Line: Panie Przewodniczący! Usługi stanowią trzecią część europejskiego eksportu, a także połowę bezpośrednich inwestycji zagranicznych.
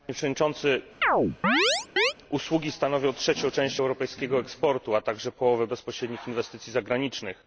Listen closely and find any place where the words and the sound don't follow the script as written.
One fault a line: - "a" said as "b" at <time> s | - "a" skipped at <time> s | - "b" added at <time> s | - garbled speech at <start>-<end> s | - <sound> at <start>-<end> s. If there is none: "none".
- chirp at 1.0-2.1 s